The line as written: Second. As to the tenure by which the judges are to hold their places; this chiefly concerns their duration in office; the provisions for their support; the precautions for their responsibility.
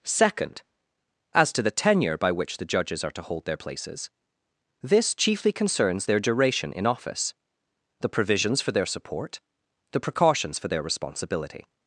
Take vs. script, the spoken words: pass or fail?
pass